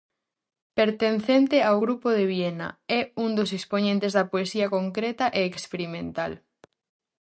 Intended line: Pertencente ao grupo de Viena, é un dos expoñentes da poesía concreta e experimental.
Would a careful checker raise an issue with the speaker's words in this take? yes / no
no